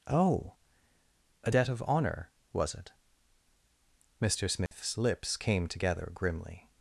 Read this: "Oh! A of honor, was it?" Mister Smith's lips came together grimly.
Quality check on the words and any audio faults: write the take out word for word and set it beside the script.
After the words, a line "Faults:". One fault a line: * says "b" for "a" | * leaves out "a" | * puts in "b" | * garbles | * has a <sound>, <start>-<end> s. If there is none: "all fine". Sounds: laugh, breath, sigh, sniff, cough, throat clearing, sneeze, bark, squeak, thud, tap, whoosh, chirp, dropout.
"Oh! A debt of honor, was it?" Mister Smith's lips came together grimly.
Faults:
* puts in "debt"
* has a dropout, 4.7-4.7 s